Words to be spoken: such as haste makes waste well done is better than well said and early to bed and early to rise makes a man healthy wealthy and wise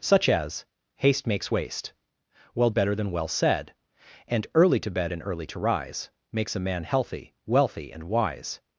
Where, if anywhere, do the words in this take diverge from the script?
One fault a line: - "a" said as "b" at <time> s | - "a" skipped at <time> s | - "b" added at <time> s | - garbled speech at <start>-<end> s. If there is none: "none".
- "done is" skipped at 2.7 s